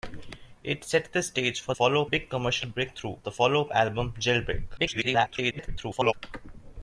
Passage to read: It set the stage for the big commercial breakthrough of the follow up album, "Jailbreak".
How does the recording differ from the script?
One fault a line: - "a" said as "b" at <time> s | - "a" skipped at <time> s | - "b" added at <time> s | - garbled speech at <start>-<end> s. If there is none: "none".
- "the" said as "follow" at 1.7 s
- "of" skipped at 3.2 s
- garbled speech at 4.8-6.1 s